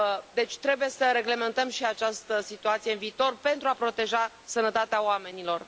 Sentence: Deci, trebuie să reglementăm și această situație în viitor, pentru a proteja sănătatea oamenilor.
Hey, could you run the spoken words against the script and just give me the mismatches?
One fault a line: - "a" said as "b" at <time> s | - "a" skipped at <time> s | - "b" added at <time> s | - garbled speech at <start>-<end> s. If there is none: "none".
none